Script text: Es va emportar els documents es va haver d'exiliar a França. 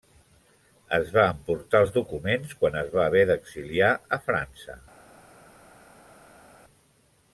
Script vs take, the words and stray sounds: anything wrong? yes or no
yes